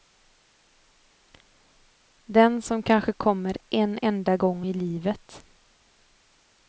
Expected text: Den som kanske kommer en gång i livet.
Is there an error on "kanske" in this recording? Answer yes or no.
no